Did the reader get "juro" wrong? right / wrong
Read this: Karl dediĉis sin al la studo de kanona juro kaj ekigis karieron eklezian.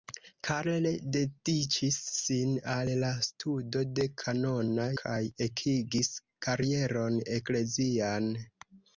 wrong